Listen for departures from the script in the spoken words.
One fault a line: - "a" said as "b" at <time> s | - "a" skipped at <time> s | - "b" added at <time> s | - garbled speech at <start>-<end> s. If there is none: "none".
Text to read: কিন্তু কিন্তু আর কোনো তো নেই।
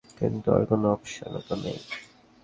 - "কিন্তু" skipped at 0.5 s
- "অপশনও" added at 0.9 s